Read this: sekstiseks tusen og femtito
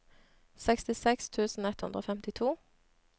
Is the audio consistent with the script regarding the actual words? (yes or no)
no